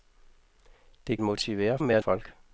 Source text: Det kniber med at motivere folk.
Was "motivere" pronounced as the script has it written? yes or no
no